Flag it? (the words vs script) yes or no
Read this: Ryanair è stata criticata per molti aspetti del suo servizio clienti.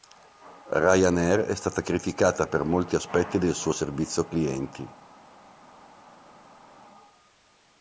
no